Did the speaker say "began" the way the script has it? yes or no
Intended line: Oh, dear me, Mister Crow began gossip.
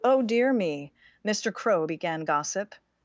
yes